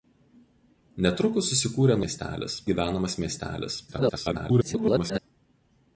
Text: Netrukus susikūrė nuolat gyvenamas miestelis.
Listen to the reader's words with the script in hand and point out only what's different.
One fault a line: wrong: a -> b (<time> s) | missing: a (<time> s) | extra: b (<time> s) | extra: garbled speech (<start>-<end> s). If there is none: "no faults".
wrong: nuolat -> miestelis (2.0 s)
extra: garbled speech (3.9-5.2 s)